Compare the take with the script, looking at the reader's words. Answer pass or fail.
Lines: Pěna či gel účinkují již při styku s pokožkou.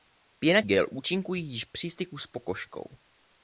fail